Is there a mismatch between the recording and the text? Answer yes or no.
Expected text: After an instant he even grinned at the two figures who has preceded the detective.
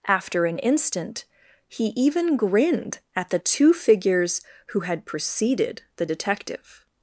yes